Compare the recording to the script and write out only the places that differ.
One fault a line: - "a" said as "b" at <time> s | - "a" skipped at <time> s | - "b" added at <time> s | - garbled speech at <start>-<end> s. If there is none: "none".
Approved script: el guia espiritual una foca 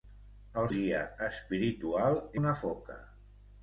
none